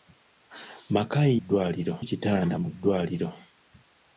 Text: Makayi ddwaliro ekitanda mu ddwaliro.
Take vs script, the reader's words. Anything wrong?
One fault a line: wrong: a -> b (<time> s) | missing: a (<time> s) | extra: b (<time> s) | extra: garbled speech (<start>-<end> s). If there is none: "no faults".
no faults